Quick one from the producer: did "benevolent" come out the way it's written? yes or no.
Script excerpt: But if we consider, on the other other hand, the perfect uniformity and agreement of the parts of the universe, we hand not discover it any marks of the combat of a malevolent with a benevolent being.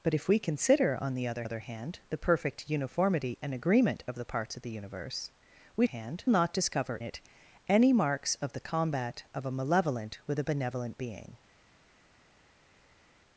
yes